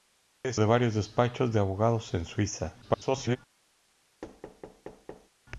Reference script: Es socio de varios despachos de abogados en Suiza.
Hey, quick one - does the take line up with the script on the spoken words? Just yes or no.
no